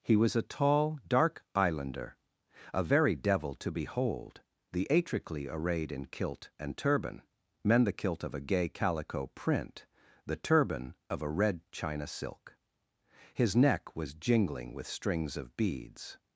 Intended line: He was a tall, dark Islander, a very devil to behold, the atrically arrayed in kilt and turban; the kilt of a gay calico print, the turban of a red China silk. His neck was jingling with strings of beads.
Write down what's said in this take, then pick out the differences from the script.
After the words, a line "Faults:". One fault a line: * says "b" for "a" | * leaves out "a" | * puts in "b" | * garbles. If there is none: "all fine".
He was a tall, dark Islander, a very devil to behold, the atrically arrayed in kilt and turban; men the kilt of a gay calico print, the turban of a red China silk. His neck was jingling with strings of beads.
Faults:
* puts in "men"